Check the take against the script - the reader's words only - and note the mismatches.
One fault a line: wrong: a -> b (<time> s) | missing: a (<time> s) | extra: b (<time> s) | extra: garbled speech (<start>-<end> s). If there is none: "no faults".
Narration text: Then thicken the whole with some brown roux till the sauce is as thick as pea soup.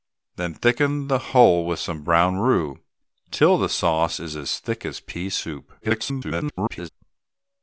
extra: garbled speech (5.8-6.9 s)